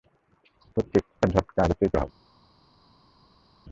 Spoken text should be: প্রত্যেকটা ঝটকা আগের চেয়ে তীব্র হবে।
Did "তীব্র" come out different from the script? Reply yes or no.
yes